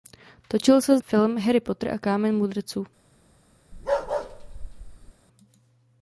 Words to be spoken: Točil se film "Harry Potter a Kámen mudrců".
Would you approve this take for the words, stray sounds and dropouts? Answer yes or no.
no